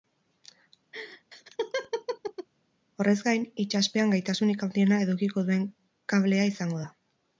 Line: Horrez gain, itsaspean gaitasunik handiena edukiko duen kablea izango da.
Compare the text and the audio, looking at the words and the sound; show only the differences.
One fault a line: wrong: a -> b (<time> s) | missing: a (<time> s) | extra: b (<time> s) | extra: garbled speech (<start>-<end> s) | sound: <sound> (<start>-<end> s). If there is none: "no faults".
sound: laugh (0.9-2.5 s)